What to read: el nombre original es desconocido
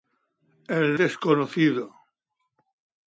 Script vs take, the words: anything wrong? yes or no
yes